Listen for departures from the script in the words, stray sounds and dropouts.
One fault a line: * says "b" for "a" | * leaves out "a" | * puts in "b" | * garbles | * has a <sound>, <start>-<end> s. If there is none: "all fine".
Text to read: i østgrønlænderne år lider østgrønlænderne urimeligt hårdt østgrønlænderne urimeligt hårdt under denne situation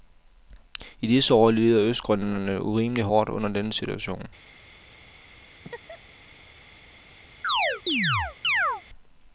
* says "disse" for "østgrønlænderne"
* leaves out "østgrønlænderne urimeligt hårdt"
* has a laugh, 5.5-6.0 s
* has a chirp, 7.4-8.8 s